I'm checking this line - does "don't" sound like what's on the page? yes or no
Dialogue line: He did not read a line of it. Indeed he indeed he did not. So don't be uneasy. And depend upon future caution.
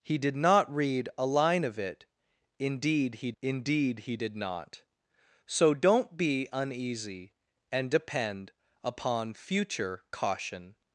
yes